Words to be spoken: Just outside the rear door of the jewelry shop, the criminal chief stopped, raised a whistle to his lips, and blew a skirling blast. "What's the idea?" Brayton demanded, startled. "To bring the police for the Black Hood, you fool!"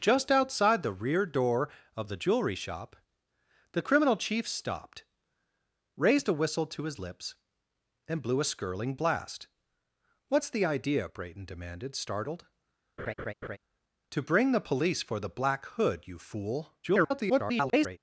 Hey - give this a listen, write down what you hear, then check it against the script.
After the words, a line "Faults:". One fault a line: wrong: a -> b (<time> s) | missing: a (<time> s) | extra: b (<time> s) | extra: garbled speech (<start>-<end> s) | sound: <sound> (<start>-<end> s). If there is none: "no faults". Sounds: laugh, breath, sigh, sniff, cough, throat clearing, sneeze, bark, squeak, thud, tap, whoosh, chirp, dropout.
Just outside the rear door of the jewelry shop, the criminal chief stopped, raised a whistle to his lips, and blew a skirling blast. "What's the idea?" Brayton demanded, startled. "To bring the police for the Black Hood, you fool!" [garbled]
Faults:
sound: laugh (13.0-13.6 s)
extra: garbled speech (16.8-18.0 s)